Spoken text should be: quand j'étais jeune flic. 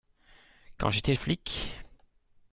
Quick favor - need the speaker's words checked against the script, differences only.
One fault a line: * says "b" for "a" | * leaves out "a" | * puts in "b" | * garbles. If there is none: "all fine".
* leaves out "jeune"